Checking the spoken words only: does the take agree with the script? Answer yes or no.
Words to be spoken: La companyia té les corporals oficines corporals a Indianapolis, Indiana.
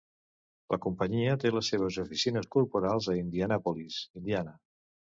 no